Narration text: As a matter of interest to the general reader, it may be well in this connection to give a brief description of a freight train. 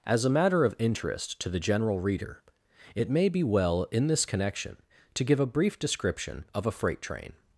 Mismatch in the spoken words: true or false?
false